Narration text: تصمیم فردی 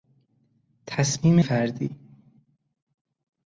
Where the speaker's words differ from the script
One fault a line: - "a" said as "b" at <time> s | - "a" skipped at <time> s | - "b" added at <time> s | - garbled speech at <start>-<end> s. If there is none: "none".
none